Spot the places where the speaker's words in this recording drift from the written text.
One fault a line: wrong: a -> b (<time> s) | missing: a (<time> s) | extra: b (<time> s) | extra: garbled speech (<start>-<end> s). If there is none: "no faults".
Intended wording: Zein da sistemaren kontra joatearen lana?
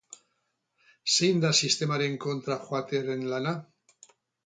no faults